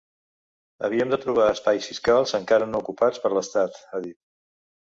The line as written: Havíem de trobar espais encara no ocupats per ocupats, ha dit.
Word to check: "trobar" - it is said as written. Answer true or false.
true